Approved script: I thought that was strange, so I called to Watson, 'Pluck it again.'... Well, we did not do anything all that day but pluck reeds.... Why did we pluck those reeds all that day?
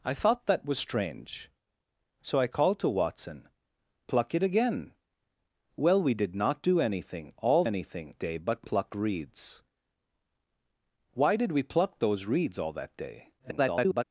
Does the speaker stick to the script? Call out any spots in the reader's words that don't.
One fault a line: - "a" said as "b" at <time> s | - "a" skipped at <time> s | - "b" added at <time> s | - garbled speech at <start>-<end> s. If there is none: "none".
- "that" said as "anything" at 7.6 s
- garbled speech at 13.4-14.0 s